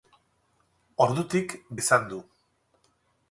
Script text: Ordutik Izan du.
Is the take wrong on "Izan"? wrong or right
right